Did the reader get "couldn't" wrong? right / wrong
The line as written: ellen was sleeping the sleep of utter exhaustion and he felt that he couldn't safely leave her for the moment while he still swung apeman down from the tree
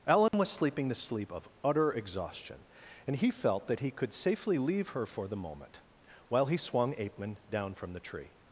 wrong